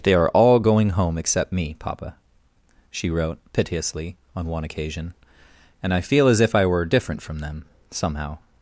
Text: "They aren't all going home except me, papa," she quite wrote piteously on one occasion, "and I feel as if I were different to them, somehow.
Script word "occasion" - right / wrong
right